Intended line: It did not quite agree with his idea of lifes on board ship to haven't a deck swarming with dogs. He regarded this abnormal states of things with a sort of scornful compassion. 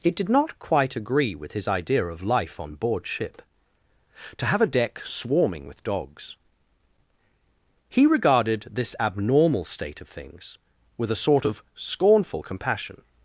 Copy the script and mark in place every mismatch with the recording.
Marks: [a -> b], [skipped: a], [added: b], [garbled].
It did not quite agree with his idea of [lifes -> life] on board ship to [haven't -> have] a deck swarming with dogs. He regarded this abnormal [states -> state] of things with a sort of scornful compassion.